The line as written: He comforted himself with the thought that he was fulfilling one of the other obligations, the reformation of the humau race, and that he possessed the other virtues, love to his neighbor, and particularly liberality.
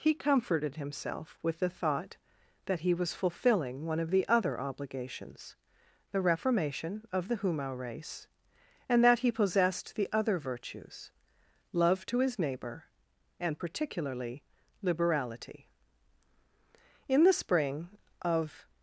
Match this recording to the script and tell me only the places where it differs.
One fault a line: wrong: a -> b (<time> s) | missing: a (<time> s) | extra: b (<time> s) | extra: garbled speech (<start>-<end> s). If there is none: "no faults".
extra: In the spring of (17.0 s)